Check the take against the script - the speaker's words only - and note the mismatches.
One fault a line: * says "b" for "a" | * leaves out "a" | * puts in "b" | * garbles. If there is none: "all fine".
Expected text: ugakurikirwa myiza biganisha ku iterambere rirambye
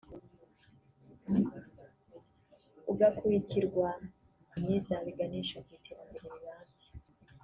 all fine